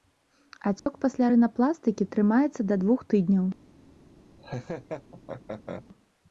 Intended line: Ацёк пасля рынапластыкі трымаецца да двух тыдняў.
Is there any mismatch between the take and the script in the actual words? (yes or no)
no